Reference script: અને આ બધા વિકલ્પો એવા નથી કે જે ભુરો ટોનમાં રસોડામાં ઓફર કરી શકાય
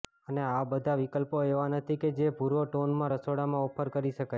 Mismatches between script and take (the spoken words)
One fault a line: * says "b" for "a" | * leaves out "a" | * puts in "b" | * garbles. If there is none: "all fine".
all fine